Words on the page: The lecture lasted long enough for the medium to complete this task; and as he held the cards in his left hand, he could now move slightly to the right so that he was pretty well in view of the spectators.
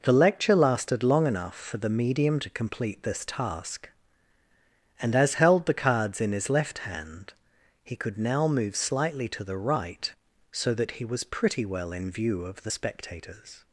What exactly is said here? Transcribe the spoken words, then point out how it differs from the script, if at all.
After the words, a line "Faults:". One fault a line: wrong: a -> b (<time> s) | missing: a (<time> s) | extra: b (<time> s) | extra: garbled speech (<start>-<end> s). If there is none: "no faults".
The lecture lasted long enough for the medium to complete this task; and as held the cards in his left hand, he could now move slightly to the right so that he was pretty well in view of the spectators.
Faults:
missing: he (5.3 s)